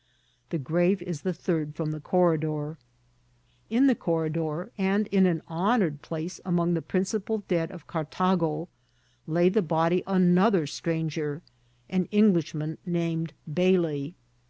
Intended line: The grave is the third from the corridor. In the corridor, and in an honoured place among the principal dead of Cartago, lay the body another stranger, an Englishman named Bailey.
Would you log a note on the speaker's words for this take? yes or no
no